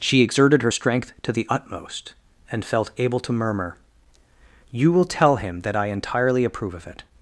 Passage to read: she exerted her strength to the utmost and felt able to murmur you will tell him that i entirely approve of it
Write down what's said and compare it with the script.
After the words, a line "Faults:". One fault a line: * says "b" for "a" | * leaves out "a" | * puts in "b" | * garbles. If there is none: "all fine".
she exerted her strength to the utmost and felt able to murmur you will tell him that i entirely approve of it
Faults:
all fine